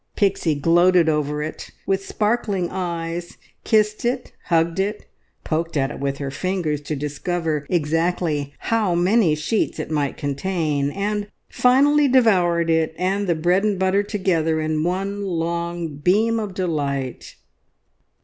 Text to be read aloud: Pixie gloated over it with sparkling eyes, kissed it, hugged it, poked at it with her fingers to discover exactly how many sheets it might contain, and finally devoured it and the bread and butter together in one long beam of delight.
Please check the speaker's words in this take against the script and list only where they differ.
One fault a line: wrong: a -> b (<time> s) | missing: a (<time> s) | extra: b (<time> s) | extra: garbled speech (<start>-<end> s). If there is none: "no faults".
no faults